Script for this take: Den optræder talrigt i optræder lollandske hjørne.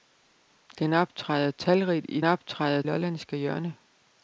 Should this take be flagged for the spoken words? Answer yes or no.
no